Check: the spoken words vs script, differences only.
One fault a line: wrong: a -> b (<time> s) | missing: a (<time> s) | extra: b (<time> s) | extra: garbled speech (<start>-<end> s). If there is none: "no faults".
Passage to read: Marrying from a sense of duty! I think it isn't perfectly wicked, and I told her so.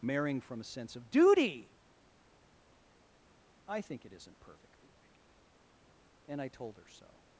no faults